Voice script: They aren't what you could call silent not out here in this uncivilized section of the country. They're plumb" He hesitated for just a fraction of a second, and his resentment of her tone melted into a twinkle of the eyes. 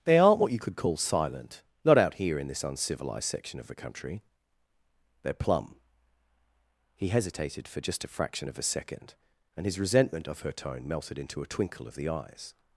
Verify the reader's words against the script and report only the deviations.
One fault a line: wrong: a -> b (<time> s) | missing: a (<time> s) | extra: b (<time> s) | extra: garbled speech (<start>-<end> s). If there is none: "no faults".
no faults